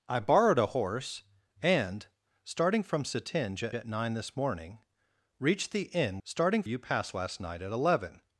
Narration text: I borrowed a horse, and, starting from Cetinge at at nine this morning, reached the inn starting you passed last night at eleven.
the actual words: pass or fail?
pass